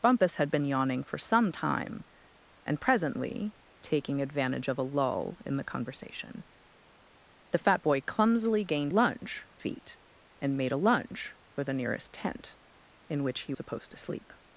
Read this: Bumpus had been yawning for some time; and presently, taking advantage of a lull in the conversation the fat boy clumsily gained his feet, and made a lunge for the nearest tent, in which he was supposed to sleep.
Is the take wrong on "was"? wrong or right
wrong